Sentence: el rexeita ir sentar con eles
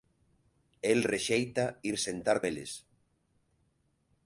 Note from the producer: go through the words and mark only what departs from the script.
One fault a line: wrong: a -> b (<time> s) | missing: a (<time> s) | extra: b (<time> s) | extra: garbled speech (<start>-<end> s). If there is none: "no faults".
missing: con (2.4 s)